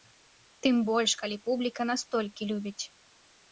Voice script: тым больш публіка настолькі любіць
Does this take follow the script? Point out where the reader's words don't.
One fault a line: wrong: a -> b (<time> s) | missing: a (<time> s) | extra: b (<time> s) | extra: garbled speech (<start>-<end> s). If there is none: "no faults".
extra: калі (1.2 s)